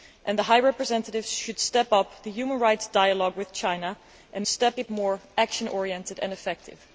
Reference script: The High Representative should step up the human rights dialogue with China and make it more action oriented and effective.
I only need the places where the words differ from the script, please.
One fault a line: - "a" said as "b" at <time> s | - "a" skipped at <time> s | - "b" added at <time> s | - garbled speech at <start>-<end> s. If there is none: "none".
- "make" said as "step" at 4.5 s